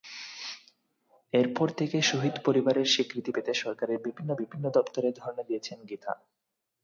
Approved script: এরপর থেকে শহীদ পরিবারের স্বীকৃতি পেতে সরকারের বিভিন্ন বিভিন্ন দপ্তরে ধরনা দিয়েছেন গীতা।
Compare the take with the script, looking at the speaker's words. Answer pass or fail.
pass